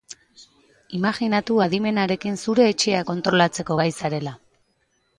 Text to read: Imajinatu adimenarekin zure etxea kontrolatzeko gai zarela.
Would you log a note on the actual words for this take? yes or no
no